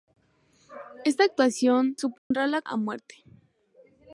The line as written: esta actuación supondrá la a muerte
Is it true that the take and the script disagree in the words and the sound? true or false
true